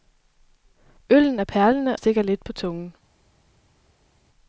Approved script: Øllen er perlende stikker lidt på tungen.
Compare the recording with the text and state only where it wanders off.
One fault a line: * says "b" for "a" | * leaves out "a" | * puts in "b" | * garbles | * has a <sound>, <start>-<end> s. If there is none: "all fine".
all fine